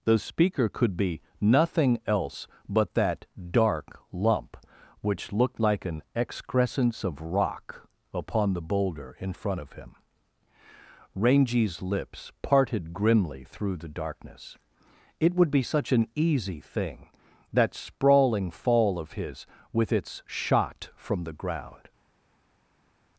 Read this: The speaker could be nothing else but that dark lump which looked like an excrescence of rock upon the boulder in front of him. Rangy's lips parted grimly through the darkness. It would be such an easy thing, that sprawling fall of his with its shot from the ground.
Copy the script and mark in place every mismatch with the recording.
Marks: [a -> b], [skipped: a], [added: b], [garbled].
The speaker could be nothing else but that dark lump which looked like an excrescence of rock upon the boulder in front of him. Rangy's lips parted grimly through the darkness. It would be such an easy thing, that sprawling fall of his with its shot from the ground.